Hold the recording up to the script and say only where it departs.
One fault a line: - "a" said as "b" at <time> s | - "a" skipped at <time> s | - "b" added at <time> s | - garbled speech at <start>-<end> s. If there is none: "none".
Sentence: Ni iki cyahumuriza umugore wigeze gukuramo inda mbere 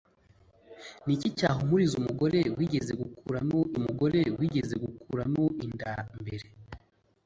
- "umugore wigeze gukuramo" added at 3.8 s